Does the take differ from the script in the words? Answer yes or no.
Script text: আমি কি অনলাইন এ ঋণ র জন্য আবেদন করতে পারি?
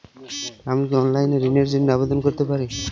no